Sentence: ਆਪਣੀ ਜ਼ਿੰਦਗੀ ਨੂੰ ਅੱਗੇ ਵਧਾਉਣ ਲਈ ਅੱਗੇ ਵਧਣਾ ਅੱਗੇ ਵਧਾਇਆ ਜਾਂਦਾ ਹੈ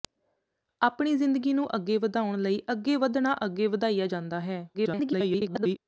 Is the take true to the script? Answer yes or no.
no